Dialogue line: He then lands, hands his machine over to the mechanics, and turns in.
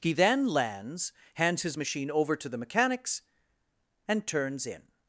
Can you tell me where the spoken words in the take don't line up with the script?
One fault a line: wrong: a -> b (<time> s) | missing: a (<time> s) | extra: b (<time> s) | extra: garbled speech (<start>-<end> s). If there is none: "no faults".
no faults